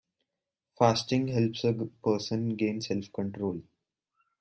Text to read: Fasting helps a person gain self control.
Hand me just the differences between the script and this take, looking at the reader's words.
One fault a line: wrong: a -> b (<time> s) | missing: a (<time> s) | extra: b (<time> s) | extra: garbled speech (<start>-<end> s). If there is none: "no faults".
no faults